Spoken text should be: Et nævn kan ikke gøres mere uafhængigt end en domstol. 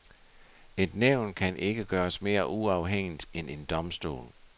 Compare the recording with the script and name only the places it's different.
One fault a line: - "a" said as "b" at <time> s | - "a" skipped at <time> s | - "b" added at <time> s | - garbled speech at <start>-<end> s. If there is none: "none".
none